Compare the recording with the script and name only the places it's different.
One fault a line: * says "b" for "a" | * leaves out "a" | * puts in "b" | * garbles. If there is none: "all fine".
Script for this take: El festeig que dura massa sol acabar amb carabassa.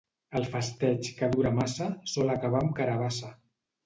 all fine